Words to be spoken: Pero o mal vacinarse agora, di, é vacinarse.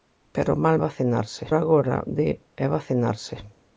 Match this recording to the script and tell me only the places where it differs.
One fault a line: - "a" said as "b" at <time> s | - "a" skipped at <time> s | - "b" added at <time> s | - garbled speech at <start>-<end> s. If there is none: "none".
none